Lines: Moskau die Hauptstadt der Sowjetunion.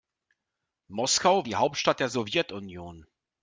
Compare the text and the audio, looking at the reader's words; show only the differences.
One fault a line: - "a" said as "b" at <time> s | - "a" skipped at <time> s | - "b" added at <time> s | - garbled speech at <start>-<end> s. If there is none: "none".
none